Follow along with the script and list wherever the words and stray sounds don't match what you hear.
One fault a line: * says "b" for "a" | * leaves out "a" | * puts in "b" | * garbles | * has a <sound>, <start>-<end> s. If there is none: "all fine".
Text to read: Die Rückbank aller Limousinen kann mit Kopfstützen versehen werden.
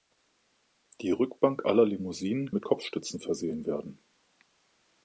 * leaves out "kann"